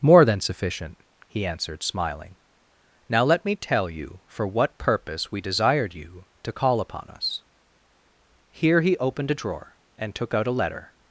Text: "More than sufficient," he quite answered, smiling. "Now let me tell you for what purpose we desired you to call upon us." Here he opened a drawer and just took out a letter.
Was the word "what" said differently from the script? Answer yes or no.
no